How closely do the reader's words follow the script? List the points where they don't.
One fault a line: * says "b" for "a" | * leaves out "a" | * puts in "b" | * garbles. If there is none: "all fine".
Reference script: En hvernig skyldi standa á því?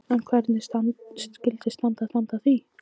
* puts in "standa"